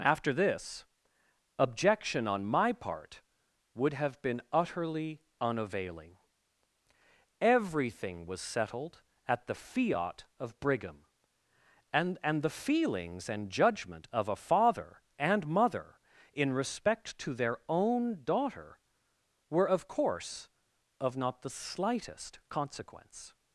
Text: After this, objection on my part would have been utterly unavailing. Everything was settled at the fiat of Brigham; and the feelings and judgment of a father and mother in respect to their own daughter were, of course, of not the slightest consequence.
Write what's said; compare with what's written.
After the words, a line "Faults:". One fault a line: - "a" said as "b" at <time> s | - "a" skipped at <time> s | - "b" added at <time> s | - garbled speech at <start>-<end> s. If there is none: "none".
After this, objection on my part would have been utterly unavailing. Everything was settled at the fiat of Brigham; and and the feelings and judgment of a father and mother in respect to their own daughter were, of course, of not the slightest consequence.
Faults:
- "and" added at 12.2 s